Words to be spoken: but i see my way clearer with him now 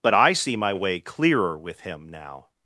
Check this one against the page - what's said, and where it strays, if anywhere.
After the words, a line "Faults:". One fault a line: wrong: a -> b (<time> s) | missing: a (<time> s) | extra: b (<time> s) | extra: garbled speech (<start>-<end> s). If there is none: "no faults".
but i see my way clearer with him now
Faults:
no faults